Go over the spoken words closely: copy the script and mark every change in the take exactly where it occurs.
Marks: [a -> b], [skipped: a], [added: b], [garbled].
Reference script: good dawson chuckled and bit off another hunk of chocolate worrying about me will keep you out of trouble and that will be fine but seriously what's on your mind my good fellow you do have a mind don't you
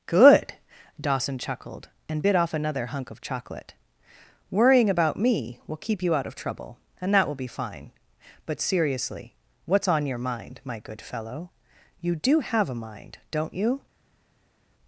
good dawson chuckled and bit off another hunk of chocolate worrying about me will keep you out of trouble and that will be fine but seriously what's on your mind my good fellow you do have a mind don't you